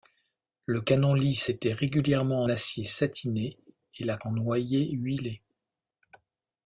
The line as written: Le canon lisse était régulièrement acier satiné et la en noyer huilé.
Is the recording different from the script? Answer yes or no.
no